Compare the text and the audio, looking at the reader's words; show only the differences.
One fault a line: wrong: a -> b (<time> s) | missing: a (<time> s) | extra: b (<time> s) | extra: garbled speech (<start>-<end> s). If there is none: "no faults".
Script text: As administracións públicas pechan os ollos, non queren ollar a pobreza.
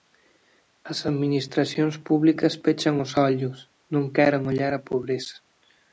no faults